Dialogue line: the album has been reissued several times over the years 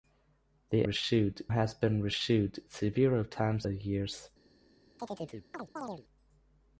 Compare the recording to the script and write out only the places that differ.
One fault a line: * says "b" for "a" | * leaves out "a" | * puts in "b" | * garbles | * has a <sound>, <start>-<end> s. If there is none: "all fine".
* says "reissued" for "album"
* leaves out "over"
* has a chirp, 5.0-6.0 s